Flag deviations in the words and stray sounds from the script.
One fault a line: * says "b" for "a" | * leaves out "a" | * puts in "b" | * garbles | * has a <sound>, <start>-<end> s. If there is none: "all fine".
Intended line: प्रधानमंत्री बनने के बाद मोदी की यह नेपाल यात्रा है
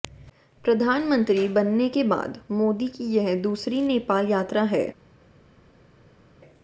* puts in "दूसरी"